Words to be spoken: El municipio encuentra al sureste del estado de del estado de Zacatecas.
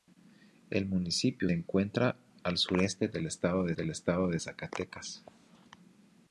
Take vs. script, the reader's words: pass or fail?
pass